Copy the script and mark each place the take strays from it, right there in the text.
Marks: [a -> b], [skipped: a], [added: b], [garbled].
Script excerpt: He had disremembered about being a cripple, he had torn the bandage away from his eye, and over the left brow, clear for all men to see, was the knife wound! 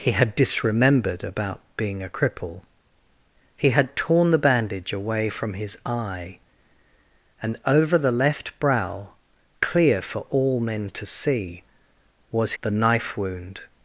He had disremembered about being a cripple, he had torn the bandage away from his eye, and over the left brow, clear for all men to see, was the knife wound!